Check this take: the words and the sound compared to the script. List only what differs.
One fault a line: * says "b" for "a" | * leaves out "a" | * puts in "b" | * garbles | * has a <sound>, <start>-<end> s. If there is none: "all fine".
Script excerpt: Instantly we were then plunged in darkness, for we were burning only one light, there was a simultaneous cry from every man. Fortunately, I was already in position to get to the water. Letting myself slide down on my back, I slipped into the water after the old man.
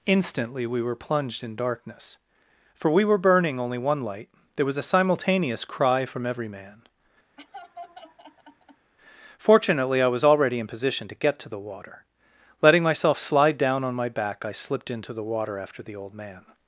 * leaves out "then"
* has a laugh, 7.4-8.9 s